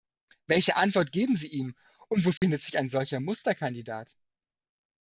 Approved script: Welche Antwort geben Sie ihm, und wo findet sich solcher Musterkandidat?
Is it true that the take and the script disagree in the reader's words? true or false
true